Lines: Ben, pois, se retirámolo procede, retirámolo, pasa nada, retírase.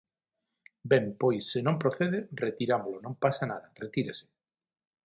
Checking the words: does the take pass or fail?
fail